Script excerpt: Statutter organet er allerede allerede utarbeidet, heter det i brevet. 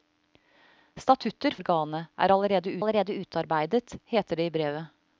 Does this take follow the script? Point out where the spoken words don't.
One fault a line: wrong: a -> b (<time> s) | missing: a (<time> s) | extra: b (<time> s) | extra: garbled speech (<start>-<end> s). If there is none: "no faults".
no faults